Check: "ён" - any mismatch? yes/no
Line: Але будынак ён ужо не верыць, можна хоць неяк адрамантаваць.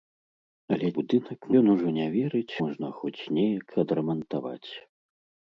no